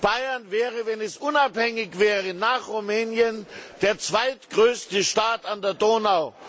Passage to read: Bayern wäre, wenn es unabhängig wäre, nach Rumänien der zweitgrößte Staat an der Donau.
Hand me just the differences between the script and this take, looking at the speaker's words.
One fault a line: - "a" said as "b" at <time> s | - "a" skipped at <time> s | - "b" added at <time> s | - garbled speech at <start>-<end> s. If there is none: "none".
none